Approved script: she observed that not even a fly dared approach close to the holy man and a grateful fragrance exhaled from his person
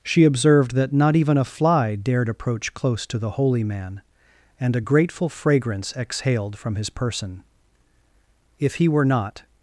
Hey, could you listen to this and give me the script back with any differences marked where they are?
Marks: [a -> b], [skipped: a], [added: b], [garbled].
she observed that not even a fly dared approach close to the holy man and a grateful fragrance exhaled from his person [added: if he were not]